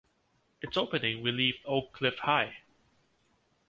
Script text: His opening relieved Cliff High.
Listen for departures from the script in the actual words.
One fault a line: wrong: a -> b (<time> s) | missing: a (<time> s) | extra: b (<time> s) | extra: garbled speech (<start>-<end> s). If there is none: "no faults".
wrong: His -> Its (0.6 s)
extra: Oak (1.7 s)